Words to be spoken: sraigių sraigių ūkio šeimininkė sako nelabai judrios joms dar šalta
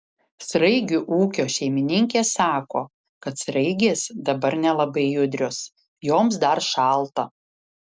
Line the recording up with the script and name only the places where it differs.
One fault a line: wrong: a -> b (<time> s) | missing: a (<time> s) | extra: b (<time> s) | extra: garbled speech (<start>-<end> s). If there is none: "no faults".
missing: sraigių (1.0 s)
extra: kad sraigės dabar (3.3 s)